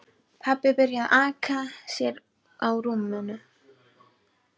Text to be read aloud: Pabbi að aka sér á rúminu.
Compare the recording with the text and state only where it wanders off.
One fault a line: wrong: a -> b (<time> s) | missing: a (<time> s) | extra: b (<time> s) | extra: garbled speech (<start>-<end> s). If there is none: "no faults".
extra: byrjaði (0.8 s)